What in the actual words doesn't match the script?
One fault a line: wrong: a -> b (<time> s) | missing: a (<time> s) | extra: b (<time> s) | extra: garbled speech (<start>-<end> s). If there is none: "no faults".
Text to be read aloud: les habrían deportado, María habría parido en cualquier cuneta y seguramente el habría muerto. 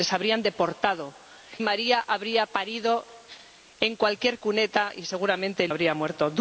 no faults